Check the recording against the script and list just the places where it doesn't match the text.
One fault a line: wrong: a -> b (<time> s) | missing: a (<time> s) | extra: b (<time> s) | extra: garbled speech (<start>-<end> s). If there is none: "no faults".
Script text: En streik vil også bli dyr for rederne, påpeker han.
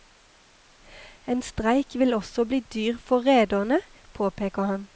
no faults